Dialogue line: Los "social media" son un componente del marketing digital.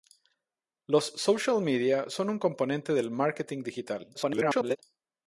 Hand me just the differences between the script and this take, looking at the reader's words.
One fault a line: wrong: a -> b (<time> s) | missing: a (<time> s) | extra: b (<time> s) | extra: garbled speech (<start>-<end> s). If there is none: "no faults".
extra: garbled speech (4.1-4.8 s)